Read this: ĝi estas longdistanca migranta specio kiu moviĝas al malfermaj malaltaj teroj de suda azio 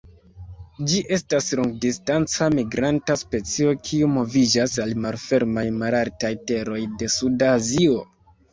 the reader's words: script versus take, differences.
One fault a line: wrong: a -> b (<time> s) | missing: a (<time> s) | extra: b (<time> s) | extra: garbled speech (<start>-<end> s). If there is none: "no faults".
no faults